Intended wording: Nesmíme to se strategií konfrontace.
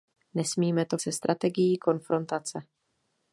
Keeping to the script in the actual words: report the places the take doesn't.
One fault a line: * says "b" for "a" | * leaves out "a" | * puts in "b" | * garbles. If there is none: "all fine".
all fine